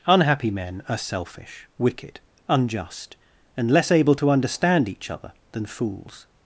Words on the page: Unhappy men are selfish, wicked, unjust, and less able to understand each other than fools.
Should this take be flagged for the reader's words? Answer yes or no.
no